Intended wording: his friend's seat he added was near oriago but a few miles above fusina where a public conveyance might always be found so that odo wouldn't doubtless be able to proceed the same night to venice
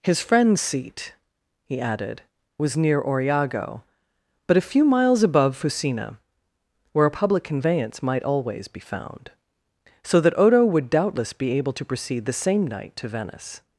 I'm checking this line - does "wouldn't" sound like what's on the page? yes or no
no